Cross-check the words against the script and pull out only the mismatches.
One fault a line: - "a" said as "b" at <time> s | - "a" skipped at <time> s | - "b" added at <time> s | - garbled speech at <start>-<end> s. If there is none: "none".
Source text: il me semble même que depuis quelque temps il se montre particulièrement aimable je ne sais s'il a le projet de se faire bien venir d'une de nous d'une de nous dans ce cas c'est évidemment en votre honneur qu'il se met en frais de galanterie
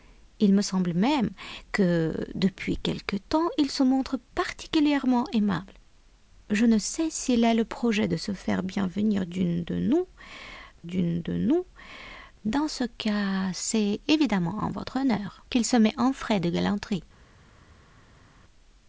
none